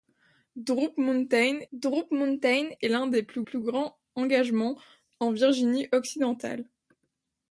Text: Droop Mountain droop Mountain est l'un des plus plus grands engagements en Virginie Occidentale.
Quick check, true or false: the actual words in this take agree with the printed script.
true